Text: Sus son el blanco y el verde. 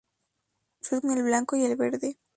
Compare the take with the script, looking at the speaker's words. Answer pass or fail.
pass